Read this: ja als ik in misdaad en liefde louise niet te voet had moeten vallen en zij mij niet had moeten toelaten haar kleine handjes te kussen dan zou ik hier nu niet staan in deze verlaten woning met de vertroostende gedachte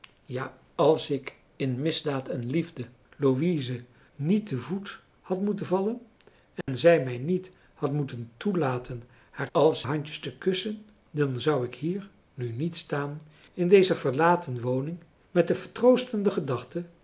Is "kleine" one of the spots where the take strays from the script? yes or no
yes